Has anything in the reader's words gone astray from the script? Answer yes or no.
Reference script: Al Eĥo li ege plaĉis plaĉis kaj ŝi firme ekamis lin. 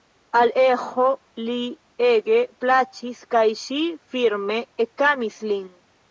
yes